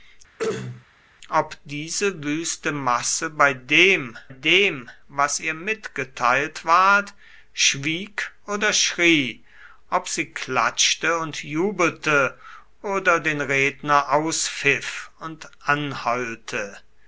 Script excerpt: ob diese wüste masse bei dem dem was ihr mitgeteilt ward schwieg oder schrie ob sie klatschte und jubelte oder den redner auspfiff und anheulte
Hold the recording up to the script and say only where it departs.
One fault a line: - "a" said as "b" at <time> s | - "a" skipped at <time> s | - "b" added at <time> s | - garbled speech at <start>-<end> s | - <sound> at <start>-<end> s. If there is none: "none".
- throat clearing at 0.4-0.9 s